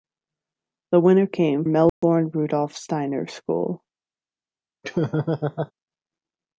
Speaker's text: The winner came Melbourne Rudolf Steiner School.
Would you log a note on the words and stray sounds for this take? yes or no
yes